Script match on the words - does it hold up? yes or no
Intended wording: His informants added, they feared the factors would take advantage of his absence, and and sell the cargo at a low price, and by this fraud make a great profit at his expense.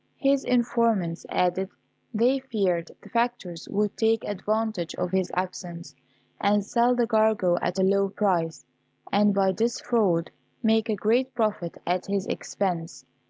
no